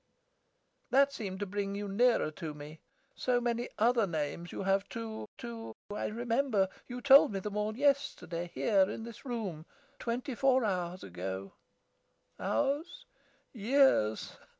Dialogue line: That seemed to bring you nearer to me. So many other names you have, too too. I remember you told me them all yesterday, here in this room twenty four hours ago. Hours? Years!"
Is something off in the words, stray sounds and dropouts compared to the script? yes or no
no